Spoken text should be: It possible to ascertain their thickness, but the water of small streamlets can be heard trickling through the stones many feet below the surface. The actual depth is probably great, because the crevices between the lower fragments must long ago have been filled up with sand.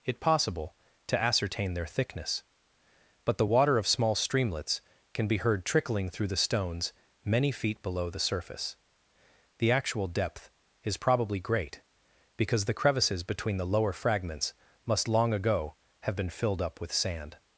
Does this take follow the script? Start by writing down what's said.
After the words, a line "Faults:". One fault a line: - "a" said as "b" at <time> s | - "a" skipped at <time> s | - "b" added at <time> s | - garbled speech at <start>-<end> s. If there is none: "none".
It possible to ascertain their thickness, but the water of small streamlets can be heard trickling through the stones many feet below the surface. The actual depth is probably great, because the crevices between the lower fragments must long ago have been filled up with sand.
Faults:
none